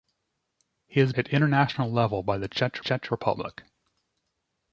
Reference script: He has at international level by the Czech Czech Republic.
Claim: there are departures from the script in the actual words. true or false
false